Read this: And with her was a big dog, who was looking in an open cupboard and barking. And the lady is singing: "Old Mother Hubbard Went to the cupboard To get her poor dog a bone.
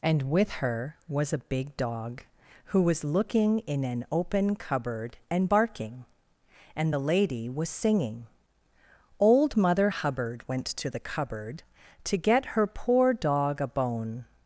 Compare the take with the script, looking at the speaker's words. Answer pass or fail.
fail